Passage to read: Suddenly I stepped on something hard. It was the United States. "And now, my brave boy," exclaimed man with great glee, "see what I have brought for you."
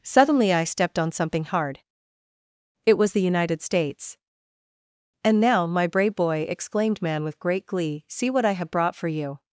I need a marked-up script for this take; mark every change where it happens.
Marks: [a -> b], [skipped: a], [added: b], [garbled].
Suddenly I stepped on something hard. It was the United States. "And now, my brave boy," exclaimed man with great glee, "see what I have brought for you."